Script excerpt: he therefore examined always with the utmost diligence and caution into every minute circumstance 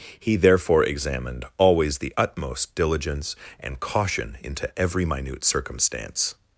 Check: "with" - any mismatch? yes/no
yes